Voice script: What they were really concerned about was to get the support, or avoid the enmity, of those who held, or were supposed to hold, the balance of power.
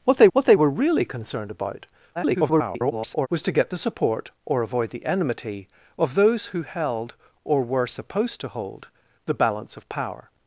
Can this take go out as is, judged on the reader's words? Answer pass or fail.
fail